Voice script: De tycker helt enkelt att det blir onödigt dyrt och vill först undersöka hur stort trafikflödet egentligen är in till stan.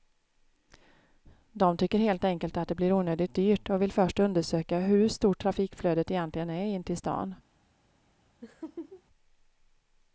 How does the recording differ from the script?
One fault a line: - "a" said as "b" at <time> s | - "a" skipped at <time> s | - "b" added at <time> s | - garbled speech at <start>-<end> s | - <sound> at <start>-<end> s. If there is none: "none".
- laugh at 8.4-9.0 s